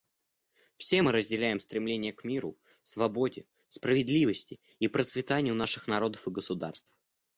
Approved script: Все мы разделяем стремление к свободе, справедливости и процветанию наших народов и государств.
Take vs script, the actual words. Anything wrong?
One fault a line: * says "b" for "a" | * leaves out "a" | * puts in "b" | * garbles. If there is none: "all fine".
* puts in "миру"